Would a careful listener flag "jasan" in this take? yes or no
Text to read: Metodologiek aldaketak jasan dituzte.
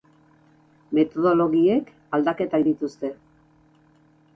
yes